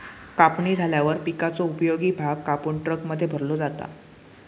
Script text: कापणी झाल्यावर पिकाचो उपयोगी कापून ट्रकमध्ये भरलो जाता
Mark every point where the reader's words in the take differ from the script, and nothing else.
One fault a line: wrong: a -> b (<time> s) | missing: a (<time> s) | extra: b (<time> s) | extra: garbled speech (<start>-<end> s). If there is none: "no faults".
extra: भाग (2.1 s)